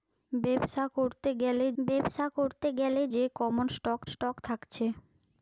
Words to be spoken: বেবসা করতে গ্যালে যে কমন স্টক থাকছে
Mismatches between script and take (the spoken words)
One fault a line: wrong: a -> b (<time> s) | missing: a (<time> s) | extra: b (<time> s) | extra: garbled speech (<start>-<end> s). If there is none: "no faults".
extra: বেবসা করতে গ্যালে (1.8 s)
extra: স্টক (4.1 s)